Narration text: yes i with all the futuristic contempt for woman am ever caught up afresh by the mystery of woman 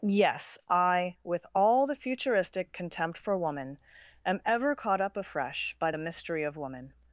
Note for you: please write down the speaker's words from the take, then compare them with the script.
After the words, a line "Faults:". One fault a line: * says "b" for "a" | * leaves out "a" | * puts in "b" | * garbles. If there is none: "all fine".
yes i with all the futuristic contempt for woman am ever caught up afresh by the mystery of woman
Faults:
all fine